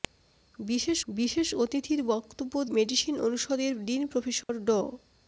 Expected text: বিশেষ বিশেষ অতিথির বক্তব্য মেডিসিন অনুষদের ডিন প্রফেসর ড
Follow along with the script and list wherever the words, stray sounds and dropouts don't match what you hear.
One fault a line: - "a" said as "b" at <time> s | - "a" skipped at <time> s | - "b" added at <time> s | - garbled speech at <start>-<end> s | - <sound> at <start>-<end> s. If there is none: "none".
- dropout at 4.4-4.5 s